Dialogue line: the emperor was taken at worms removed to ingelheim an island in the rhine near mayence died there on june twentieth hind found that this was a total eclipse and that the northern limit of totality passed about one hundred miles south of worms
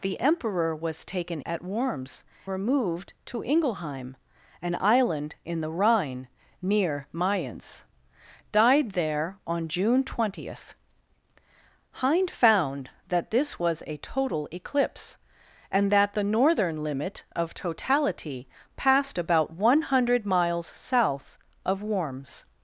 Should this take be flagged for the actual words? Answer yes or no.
no